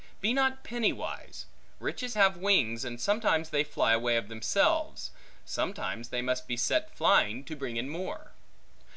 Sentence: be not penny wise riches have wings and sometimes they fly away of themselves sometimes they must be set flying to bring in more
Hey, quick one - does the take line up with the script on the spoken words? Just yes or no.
yes